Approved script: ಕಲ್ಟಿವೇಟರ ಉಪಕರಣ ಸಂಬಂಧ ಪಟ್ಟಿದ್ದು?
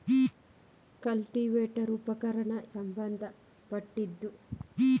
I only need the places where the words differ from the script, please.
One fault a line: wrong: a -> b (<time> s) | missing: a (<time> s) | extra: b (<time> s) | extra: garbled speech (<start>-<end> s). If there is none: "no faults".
no faults